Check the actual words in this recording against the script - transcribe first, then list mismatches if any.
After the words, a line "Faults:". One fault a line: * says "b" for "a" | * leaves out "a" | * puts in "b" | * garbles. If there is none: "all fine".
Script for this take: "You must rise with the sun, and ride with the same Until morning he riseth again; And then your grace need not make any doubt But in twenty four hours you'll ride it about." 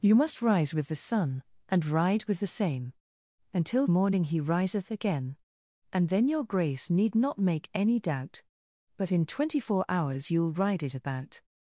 "You must rise with the sun, and ride with the same Until morning he riseth again; And then your grace need not make any doubt But in twenty four hours you'll ride it about."
Faults:
all fine